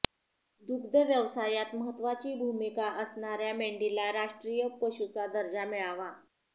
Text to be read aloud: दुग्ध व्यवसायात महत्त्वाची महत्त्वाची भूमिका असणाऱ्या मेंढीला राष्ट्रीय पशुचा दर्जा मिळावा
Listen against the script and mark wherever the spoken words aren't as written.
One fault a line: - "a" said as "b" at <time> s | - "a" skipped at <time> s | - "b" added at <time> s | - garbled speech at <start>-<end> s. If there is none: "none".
- "महत्त्वाची" skipped at 2.3 s